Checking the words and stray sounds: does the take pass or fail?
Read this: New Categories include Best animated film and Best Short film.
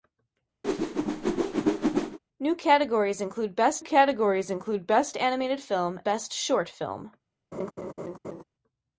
fail